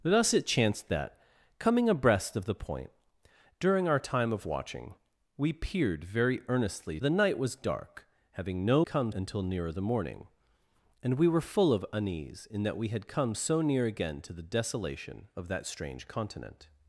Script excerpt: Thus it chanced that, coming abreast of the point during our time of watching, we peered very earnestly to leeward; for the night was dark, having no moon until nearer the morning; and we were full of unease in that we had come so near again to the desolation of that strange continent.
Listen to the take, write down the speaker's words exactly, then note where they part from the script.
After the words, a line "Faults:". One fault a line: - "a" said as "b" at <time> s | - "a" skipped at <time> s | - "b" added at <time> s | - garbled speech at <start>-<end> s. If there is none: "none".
Thus it chanced that, coming abreast of the point during our time of watching, we peered very earnestly the night was dark, having no come until nearer the morning; and we were full of unease in that we had come so near again to the desolation of that strange continent.
Faults:
- "to leeward for" skipped at 7.0 s
- "moon" said as "come" at 8.8 s